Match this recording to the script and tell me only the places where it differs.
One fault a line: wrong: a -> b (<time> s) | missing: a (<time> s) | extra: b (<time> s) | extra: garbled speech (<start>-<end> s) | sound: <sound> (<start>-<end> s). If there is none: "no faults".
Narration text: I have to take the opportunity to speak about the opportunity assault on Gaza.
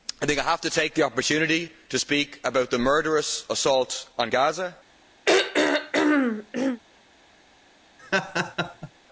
wrong: opportunity -> murderous (2.8 s)
sound: throat clearing (5.3-6.8 s)
sound: laugh (8.0-8.9 s)